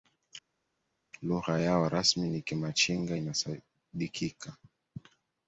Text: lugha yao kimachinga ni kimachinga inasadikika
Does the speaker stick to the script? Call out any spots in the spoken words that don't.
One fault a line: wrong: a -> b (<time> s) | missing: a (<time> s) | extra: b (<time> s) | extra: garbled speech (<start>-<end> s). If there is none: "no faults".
wrong: kimachinga -> rasmi (1.9 s)